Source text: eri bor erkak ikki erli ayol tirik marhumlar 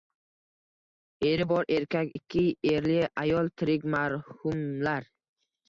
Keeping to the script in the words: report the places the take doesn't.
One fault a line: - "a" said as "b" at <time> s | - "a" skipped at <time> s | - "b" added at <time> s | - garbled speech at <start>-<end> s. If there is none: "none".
none